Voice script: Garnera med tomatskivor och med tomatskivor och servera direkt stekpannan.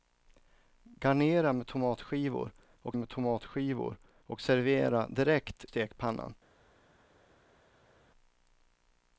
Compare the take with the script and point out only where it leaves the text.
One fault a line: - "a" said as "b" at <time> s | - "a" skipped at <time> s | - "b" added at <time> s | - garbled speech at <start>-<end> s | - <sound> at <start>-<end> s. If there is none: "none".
none